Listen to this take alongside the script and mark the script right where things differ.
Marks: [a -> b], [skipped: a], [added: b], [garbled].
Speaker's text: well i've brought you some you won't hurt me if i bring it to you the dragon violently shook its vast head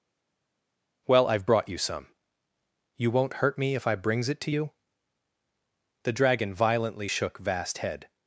well i've brought you some you won't hurt me if i [bring -> brings] it to you the dragon violently shook [skipped: its] vast head